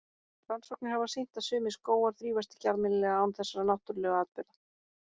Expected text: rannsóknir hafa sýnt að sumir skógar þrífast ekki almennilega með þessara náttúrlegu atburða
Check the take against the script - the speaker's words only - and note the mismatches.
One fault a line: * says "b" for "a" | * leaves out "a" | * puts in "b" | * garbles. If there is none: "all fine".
* says "án" for "með"